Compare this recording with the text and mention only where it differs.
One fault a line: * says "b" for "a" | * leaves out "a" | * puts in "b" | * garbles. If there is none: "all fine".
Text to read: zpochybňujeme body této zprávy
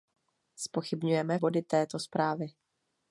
all fine